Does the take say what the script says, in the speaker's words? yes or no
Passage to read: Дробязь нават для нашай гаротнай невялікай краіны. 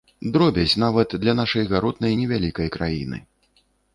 yes